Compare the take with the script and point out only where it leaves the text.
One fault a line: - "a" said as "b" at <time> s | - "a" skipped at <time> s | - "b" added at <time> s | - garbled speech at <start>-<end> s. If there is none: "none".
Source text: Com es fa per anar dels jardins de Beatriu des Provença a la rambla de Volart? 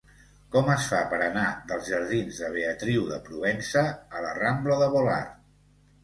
- "des" said as "de" at 3.1 s